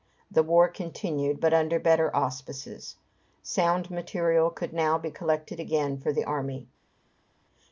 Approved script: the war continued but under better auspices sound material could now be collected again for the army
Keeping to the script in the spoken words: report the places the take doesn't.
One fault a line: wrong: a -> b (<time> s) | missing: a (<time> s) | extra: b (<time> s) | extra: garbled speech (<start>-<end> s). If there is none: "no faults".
no faults